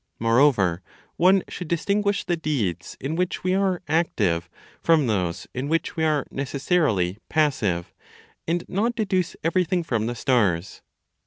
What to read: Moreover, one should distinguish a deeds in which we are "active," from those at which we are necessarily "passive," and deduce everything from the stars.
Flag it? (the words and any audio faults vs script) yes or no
yes